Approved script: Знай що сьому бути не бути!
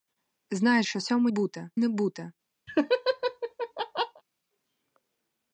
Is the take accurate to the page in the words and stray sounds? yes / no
no